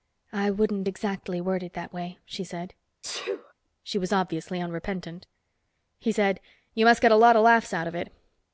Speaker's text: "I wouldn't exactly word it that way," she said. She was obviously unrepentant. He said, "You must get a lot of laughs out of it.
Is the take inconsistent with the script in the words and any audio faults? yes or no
yes